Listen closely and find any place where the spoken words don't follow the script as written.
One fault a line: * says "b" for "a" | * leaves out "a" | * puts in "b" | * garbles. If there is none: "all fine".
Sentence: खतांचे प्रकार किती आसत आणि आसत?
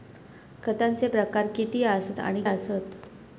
all fine